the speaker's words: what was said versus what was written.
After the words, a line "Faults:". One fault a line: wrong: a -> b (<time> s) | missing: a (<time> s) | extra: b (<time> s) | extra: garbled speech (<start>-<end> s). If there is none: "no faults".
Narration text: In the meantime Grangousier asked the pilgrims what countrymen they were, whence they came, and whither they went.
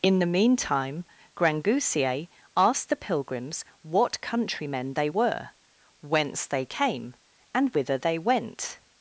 In the meantime Grangousier asked the pilgrims what countrymen they were, whence they came, and whither they went.
Faults:
no faults